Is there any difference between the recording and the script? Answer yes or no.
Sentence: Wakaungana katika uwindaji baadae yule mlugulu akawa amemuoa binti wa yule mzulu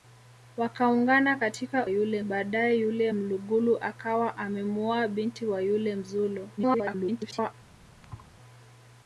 yes